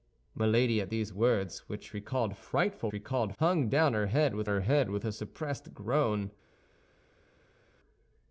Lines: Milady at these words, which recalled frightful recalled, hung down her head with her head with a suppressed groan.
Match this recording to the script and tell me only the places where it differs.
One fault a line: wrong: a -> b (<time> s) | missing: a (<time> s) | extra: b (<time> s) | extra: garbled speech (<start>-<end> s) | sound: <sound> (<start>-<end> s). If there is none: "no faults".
no faults